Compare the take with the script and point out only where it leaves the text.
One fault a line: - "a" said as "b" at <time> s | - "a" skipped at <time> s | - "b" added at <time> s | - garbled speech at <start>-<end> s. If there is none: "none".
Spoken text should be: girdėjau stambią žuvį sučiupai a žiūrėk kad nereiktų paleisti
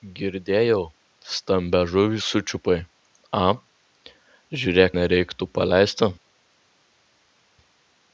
- "kad" skipped at 4.9 s